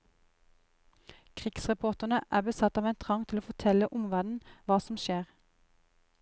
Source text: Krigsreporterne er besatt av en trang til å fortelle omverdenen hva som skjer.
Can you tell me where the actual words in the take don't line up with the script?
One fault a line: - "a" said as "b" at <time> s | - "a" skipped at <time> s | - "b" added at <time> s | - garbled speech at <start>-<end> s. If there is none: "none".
none